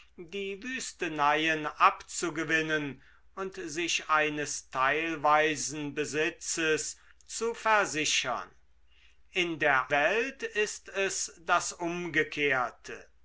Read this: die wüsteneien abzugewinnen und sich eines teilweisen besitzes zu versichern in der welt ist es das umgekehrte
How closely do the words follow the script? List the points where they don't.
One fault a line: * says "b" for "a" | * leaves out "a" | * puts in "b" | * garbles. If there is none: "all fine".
all fine